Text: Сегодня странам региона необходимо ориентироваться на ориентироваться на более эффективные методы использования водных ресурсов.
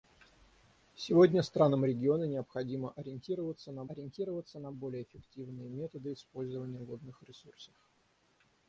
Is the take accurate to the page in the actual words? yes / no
yes